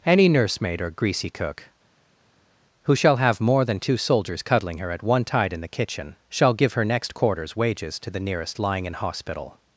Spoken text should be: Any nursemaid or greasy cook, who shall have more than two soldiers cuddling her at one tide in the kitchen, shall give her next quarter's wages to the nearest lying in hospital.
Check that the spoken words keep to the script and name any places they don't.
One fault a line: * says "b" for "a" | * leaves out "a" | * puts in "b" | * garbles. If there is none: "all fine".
all fine